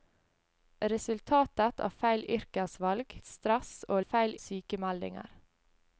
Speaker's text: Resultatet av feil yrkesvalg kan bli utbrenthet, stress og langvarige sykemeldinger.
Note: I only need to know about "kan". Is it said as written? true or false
false